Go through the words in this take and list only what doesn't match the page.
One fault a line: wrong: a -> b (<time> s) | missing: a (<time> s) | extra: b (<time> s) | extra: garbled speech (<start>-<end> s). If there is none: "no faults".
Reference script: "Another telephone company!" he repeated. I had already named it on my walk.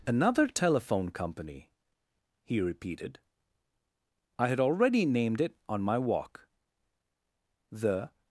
extra: The (7.7 s)